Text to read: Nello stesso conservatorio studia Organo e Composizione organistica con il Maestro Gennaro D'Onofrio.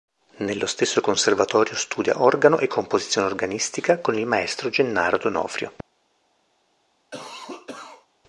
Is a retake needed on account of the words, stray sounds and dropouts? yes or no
yes